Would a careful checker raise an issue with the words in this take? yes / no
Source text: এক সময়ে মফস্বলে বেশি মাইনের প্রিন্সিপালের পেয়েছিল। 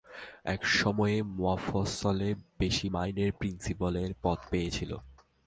yes